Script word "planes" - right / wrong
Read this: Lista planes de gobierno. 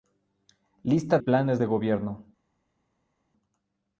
right